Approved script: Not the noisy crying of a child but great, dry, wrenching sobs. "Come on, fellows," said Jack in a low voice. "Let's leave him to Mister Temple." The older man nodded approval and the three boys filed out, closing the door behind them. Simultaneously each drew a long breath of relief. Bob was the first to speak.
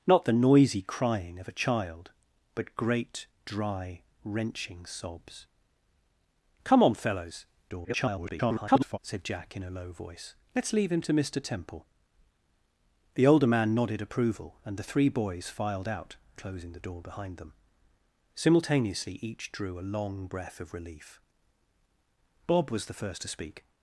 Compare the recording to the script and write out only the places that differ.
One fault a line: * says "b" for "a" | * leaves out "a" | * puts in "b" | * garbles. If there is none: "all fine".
* garbles